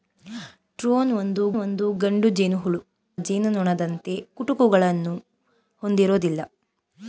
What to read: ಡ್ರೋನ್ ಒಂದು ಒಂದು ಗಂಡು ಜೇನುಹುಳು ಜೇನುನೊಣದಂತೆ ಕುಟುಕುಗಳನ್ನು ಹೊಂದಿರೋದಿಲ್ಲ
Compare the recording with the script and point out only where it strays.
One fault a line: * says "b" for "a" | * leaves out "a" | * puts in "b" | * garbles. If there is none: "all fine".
all fine